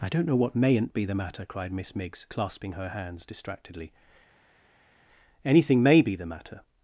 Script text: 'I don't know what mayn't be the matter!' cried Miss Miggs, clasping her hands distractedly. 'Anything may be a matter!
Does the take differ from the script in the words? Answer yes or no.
yes